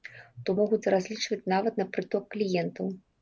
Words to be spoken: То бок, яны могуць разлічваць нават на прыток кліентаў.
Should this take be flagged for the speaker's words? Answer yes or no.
yes